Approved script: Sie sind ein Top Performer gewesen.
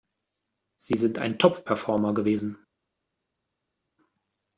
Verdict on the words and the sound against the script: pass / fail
pass